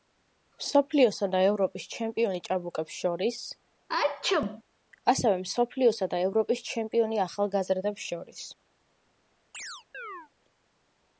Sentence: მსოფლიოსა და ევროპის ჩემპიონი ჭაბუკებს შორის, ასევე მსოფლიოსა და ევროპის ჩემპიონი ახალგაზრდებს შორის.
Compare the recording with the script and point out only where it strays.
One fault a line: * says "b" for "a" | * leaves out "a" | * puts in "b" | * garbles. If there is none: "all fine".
all fine